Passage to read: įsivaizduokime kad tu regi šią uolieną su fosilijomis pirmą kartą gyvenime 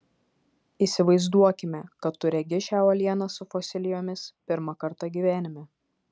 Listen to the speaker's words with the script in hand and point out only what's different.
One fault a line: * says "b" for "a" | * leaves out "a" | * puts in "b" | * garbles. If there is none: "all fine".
all fine